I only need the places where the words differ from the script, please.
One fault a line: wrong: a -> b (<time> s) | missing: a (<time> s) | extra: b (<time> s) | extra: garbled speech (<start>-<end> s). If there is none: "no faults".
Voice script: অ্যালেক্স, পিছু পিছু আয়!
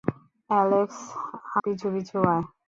no faults